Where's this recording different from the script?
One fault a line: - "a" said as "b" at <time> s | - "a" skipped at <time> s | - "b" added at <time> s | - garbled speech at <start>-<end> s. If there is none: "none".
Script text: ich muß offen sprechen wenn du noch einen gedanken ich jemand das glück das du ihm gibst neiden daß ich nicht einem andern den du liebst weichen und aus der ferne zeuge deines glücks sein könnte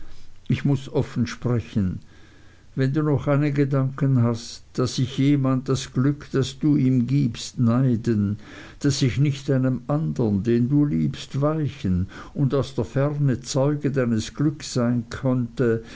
- "hast daß" added at 4.2 s